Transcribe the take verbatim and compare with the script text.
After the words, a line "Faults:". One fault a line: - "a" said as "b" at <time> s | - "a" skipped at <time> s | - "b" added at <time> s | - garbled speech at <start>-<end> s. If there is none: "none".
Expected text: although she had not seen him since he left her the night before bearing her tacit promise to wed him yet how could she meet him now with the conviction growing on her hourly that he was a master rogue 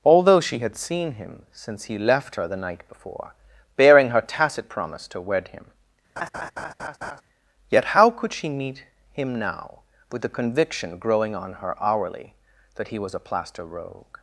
although she had seen him since he left her the night before bearing her tacit promise to wed him yet how could she meet him now with the conviction growing on her hourly that he was a plaster rogue
Faults:
- "not" skipped at 0.8 s
- "master" said as "plaster" at 13.2 s